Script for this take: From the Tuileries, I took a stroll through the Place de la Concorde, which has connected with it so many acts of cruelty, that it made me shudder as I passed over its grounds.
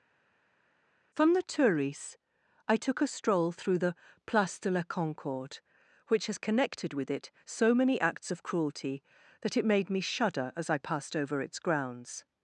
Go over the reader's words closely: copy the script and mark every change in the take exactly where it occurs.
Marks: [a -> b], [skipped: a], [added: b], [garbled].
From the Tuileries, I took a stroll through the Place de la Concorde, which has connected with it so many acts of cruelty, that it made me shudder as I passed over its grounds.